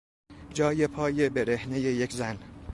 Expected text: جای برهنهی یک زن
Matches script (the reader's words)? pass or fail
fail